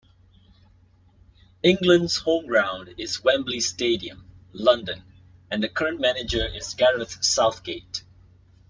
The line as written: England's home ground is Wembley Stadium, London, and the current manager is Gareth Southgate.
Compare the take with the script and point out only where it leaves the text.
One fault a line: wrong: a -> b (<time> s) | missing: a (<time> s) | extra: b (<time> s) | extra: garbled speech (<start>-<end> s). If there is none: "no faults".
no faults